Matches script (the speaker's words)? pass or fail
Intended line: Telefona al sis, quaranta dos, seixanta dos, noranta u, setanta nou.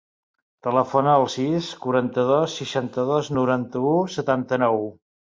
pass